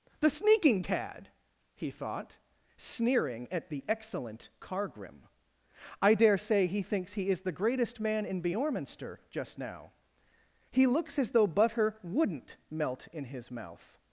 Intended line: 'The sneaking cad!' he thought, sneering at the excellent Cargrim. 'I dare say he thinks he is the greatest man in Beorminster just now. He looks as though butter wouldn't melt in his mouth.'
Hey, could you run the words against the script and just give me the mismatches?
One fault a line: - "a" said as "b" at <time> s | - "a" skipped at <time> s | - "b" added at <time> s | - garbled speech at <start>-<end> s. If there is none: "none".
none